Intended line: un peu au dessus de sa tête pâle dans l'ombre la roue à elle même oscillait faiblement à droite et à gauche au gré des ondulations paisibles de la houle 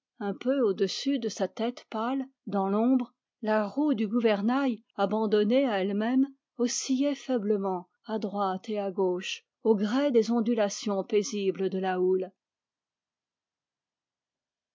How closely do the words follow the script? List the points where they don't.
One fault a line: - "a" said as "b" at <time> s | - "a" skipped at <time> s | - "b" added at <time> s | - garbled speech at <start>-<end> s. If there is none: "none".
- "du gouvernail abandonnée" added at 3.9 s